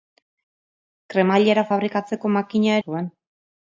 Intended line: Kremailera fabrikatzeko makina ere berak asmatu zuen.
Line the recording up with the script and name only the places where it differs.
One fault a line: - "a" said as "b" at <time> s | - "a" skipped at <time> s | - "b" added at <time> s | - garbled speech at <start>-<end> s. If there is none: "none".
- "ere berak asmatu" skipped at 2.8 s